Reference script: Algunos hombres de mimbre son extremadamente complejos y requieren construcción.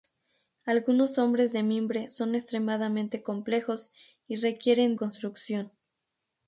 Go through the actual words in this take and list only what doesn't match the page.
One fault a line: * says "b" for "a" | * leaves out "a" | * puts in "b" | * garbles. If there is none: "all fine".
all fine